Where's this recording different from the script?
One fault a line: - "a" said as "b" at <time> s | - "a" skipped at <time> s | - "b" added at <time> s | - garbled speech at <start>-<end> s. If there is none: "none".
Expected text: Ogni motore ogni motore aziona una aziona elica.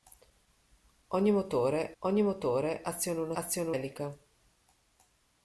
none